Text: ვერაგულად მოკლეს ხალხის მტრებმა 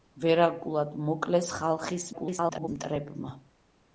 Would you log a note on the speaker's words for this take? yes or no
yes